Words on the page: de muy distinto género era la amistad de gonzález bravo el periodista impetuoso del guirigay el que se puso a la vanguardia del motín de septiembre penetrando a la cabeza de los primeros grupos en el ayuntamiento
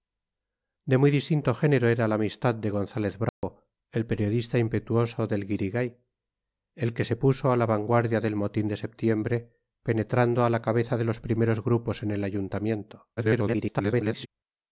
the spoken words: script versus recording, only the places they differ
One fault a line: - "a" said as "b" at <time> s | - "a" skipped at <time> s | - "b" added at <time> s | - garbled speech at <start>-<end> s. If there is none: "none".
- garbled speech at 13.2-14.3 s